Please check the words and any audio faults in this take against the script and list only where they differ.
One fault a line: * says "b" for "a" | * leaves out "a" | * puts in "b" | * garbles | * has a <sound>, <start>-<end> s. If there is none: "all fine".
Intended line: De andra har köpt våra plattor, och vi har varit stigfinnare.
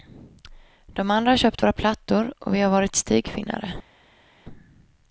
all fine